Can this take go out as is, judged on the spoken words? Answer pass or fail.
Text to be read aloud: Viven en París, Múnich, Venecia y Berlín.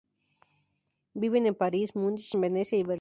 pass